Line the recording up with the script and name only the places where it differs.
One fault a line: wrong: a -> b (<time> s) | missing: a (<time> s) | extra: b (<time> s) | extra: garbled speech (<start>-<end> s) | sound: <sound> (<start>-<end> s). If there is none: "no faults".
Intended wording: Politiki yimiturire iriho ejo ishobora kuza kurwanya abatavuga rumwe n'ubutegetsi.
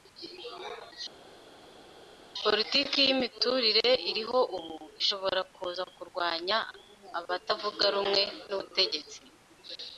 wrong: ejo -> ubu (4.6 s)